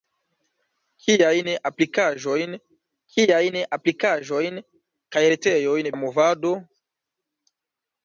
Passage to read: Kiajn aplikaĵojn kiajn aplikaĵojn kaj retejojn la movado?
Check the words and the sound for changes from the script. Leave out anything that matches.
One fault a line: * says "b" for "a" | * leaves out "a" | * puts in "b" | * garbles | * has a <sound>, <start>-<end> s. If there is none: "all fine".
all fine